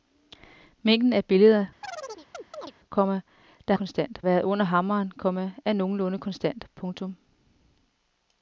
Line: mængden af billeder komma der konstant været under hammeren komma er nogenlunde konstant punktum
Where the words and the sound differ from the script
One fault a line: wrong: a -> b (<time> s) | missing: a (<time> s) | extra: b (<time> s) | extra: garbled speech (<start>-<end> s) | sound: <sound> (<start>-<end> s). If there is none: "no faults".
sound: chirp (1.8-2.7 s)